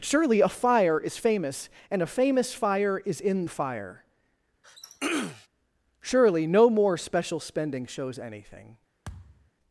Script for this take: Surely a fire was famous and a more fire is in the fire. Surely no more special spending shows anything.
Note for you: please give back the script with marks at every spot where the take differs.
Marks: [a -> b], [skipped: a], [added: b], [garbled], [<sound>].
Surely a fire [was -> is] famous and a [more -> famous] fire is in the fire. [throat clearing] Surely no more special spending shows anything. [thud]